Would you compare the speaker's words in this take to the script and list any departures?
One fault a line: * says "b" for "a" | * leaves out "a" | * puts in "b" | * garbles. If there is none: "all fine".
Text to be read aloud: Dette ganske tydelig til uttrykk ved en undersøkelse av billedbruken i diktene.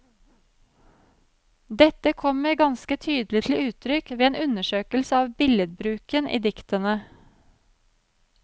* puts in "kommer"